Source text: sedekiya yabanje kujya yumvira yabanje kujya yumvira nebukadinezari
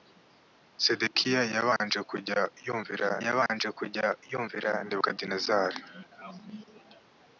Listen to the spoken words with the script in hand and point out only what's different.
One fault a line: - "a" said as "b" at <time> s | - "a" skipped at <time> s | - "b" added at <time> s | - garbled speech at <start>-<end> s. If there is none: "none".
none